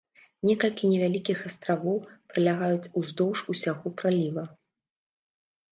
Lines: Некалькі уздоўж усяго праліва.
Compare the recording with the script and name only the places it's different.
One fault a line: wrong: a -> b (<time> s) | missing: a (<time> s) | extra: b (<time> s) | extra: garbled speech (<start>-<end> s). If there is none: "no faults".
extra: невялікіх астравоў пралягаюць (0.9 s)